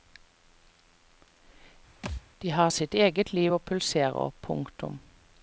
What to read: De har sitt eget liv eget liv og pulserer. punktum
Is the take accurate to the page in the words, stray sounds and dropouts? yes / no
no